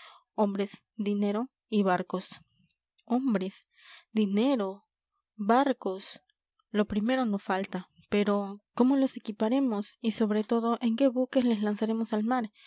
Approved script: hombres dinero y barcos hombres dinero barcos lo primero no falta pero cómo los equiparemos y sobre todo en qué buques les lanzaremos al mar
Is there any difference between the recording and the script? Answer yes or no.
no